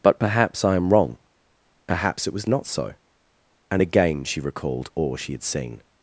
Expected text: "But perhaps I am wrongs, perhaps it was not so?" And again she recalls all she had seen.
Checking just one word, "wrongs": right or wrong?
wrong